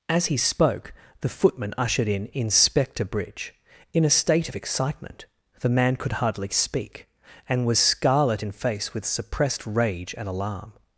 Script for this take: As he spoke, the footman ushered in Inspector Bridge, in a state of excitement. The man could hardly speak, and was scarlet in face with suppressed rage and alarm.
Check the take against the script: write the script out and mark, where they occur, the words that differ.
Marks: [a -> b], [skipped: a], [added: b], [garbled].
As he spoke, the footman ushered in Inspector Bridge, in a state of excitement. The man could hardly speak, and was scarlet in face with suppressed rage and alarm.